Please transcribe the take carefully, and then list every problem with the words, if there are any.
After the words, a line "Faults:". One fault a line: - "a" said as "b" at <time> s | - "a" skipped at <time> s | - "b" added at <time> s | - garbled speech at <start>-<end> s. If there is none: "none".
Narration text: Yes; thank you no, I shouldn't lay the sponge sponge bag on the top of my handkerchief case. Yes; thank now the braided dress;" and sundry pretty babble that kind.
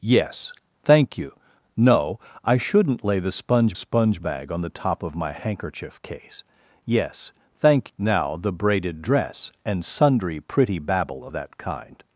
Yes; thank you no, I shouldn't lay the sponge sponge bag on the top of my handkerchief case. Yes; thank now the braided dress;" and sundry pretty babble that kind.
Faults:
none